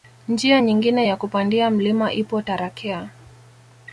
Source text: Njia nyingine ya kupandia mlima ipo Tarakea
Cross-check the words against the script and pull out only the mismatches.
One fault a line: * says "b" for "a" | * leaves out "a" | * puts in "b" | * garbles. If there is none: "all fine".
all fine